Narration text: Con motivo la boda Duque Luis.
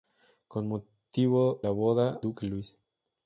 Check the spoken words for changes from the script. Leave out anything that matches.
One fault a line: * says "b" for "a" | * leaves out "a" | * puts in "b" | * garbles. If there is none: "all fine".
all fine